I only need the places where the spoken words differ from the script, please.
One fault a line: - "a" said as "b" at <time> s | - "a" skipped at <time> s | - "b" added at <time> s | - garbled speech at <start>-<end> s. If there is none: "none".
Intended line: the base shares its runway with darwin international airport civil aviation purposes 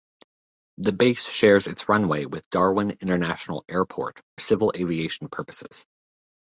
none